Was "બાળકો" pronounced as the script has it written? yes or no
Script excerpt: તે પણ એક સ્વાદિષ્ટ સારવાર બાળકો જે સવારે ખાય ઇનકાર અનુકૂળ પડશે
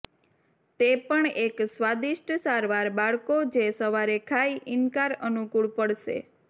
yes